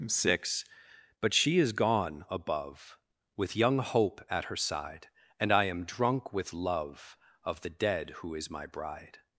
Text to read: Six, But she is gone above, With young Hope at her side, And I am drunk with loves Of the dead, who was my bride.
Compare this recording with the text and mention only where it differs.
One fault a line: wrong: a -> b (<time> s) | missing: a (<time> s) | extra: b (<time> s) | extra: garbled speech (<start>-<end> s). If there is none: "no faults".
wrong: loves -> love (6.5 s)
wrong: was -> is (8.3 s)